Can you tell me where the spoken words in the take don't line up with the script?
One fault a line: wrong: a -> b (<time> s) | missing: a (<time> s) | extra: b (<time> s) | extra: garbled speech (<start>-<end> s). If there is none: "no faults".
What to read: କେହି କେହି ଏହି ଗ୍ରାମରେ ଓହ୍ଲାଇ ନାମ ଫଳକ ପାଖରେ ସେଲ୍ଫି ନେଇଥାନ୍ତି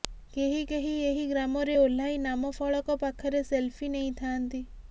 no faults